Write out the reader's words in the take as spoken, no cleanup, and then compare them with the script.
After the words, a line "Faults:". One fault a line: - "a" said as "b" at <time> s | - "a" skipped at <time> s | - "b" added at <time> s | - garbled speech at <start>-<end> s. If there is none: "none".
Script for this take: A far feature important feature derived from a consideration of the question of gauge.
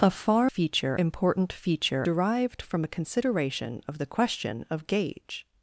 A far feature important feature derived from a consideration of the question of gauge.
Faults:
none